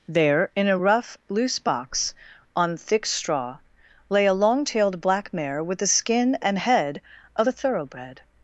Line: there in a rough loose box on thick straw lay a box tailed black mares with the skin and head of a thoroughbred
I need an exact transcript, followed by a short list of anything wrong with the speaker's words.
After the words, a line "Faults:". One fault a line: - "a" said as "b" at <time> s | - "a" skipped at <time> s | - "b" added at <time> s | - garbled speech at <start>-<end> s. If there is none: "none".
there in a rough loose box on thick straw lay a long tailed black mare with the skin and head of a thoroughbred
Faults:
- "box" said as "long" at 4.3 s
- "mares" said as "mare" at 5.3 s